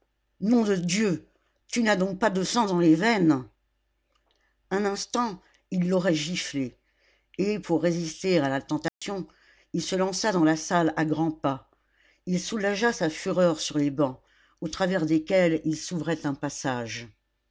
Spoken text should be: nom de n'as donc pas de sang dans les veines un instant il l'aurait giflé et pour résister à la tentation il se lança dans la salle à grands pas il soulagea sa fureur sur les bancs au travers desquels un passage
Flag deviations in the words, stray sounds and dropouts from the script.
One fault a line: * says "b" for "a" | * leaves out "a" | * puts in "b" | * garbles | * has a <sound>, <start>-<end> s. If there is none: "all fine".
* puts in "dieu tu"
* has a dropout, 8.9-9.0 s
* puts in "il s'ouvrait"